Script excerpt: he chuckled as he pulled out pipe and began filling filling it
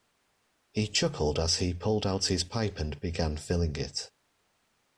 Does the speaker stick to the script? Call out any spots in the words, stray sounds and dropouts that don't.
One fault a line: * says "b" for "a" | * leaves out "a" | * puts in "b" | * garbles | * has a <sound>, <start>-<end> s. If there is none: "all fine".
* puts in "his"
* leaves out "filling"